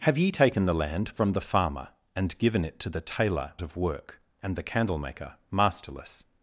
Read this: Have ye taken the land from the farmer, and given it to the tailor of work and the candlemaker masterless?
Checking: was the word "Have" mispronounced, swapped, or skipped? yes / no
no